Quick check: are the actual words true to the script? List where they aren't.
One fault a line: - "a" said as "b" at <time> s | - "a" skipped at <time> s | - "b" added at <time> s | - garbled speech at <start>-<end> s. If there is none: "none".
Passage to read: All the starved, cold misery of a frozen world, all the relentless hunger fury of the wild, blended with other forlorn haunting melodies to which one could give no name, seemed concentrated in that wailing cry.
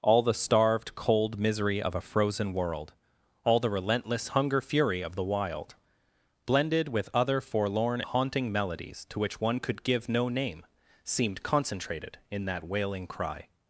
none